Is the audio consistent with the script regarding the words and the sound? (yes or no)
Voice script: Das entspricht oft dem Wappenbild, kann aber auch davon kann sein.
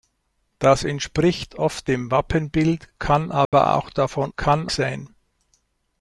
no